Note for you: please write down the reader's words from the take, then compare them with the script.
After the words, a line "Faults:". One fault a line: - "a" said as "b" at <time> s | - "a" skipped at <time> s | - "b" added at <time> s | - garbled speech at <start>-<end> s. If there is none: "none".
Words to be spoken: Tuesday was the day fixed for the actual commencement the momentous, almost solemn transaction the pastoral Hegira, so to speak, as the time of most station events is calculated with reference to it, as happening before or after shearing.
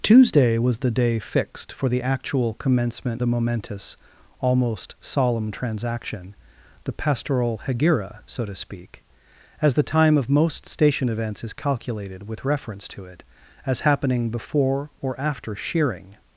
Tuesday was the day fixed for the actual commencement the momentous, almost solemn transaction the pastoral Hegira, so to speak, as the time of most station events is calculated with reference to it, as happening before or after shearing.
Faults:
none